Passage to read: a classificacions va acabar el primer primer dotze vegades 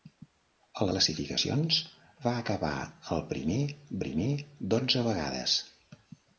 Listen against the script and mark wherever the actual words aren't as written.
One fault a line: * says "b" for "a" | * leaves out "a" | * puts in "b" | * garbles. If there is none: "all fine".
all fine